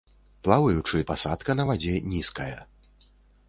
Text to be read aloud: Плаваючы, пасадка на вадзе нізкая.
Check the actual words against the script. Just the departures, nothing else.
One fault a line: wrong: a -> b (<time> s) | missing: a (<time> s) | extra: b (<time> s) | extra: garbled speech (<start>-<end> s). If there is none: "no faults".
no faults